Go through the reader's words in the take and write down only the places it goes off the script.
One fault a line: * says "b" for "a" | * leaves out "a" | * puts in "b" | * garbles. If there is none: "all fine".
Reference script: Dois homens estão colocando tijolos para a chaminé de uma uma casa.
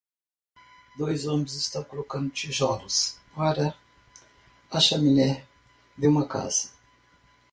* leaves out "uma"